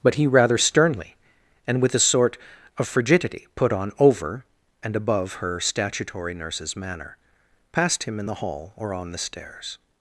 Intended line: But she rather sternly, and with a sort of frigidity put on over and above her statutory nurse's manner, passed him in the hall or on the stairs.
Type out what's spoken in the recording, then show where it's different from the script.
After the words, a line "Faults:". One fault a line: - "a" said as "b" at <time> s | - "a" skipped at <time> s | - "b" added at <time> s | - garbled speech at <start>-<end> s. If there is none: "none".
But he rather sternly, and with a sort of frigidity put on over and above her statutory nurse's manner, passed him in the hall or on the stairs.
Faults:
- "she" said as "he" at 0.1 s